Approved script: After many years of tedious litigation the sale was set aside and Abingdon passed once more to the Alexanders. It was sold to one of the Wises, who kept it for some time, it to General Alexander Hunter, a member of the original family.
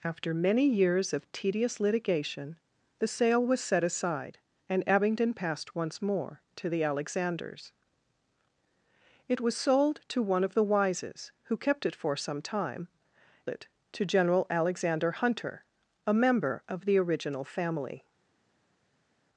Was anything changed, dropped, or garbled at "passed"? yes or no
no